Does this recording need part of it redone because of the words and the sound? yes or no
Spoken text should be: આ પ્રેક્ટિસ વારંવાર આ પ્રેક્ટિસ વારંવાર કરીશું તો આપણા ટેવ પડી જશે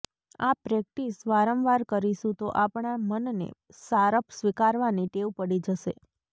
yes